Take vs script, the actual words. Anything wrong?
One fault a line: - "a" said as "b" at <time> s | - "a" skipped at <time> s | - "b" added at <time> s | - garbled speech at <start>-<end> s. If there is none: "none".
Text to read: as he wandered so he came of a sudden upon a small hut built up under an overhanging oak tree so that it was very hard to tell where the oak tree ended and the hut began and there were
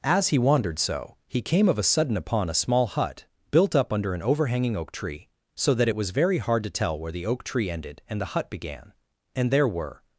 none